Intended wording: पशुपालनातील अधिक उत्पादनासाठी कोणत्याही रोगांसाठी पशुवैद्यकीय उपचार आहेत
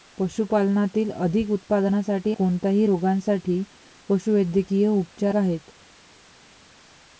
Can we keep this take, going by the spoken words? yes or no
yes